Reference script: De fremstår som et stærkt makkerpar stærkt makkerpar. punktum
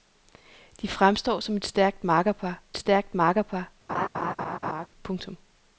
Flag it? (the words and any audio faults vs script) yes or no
yes